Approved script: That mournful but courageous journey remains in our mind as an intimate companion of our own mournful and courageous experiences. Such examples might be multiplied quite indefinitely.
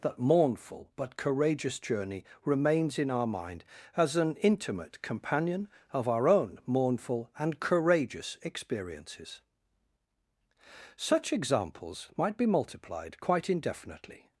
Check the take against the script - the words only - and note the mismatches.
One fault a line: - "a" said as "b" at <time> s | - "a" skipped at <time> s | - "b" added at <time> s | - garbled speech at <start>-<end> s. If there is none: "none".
none